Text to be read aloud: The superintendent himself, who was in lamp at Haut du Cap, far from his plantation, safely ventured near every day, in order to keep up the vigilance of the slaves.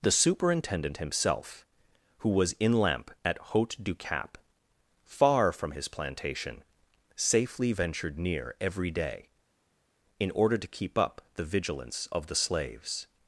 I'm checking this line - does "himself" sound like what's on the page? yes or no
yes